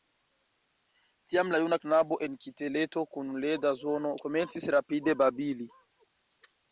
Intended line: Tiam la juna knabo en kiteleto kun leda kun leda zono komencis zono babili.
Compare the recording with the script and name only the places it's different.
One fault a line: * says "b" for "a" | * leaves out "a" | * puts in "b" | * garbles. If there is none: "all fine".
* leaves out "kun leda"
* says "rapide" for "zono"